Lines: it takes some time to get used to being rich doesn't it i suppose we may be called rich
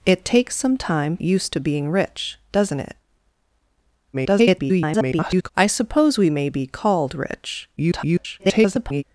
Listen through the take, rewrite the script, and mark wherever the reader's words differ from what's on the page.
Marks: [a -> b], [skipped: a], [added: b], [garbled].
it takes some time [skipped: to get] used to being rich doesn't it [garbled] i suppose we may be called rich [garbled]